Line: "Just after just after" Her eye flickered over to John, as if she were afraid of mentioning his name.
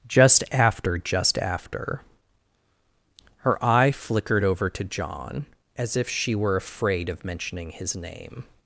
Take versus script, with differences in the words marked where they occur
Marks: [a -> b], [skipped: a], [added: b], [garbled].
"Just after just after" Her eye flickered over to John, as if she were afraid of mentioning his name.